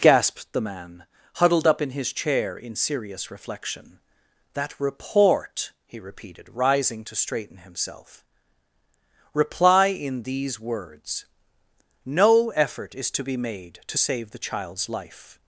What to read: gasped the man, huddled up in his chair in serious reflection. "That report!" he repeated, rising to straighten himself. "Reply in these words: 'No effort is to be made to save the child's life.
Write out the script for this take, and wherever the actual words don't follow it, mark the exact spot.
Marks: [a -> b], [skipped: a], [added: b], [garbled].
gasped the man, huddled up in his chair in serious reflection. "That report!" he repeated, rising to straighten himself. "Reply in these words: 'No effort is to be made to save the child's life.